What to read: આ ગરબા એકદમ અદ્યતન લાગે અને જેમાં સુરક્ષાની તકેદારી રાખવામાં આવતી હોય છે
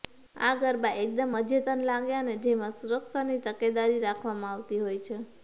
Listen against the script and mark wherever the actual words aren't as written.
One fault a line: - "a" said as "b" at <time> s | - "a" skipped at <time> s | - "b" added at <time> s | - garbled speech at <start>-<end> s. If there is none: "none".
none